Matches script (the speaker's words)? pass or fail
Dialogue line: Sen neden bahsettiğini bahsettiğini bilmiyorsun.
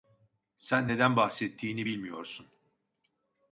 fail